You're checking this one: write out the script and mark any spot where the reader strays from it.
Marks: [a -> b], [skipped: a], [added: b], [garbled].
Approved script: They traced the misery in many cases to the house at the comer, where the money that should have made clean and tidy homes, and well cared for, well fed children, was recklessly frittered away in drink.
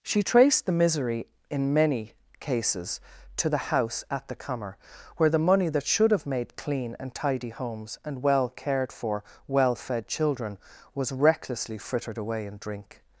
[They -> She] traced the misery in many cases to the house at the comer, where the money that should have made clean and tidy homes, and well cared for, well fed children, was recklessly frittered away in drink.